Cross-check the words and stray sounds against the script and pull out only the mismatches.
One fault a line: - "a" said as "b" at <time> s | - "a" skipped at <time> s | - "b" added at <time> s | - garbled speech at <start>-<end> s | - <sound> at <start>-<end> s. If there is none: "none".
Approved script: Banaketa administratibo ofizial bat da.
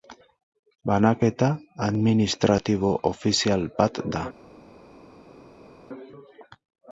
none